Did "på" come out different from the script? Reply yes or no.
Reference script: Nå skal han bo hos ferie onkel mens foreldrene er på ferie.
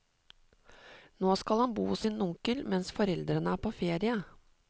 no